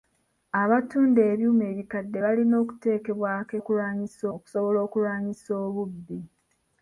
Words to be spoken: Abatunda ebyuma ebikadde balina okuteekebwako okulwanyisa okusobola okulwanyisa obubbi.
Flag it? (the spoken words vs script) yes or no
no